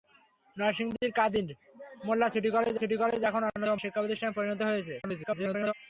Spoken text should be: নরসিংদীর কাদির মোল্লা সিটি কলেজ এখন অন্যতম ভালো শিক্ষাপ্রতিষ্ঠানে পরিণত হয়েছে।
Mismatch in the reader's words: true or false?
true